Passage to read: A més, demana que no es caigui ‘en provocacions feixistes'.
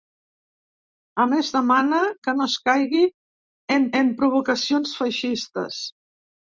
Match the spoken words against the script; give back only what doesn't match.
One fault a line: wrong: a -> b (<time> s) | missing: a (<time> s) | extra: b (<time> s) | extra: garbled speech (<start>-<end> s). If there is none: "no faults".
extra: en (4.0 s)